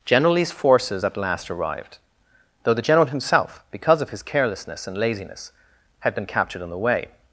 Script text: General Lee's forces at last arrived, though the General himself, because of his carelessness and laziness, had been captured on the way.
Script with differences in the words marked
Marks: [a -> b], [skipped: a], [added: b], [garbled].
General Lee's forces at last arrived, though the General himself, because of his carelessness and laziness, had been captured on the way.